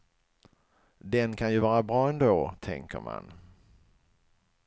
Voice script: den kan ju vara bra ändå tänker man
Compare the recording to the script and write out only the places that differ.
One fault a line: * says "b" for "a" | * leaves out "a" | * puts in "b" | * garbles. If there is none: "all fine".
all fine